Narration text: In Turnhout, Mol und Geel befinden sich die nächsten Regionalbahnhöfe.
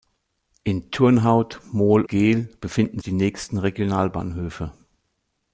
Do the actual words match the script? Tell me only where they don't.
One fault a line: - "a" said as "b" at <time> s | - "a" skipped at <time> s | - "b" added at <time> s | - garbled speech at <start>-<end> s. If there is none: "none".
- "und" skipped at 2.0 s
- "sich" skipped at 3.0 s